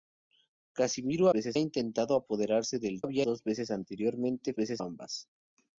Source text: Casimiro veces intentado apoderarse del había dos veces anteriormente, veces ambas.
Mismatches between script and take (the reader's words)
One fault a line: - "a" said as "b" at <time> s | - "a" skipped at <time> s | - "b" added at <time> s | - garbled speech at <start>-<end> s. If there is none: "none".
none